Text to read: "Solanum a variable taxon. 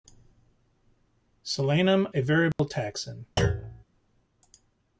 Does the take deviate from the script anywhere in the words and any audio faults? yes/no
yes